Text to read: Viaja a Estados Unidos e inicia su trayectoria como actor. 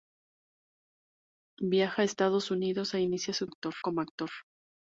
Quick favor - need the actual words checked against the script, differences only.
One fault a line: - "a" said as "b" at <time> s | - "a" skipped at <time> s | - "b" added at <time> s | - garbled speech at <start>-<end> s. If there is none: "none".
- "trayectoria" said as "actor" at 3.4 s